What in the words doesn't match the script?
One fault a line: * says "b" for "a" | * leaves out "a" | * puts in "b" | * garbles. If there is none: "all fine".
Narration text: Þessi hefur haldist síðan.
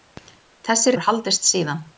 all fine